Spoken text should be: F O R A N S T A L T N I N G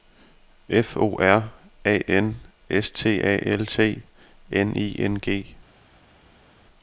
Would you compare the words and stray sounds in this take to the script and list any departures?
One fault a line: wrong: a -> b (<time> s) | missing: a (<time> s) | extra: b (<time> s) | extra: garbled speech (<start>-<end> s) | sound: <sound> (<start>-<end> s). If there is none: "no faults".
no faults